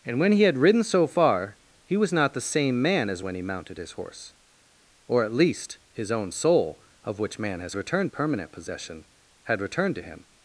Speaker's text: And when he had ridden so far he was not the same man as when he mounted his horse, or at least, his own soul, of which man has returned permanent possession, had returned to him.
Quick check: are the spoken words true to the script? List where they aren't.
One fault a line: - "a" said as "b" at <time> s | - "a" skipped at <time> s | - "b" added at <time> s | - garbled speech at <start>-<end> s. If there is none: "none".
none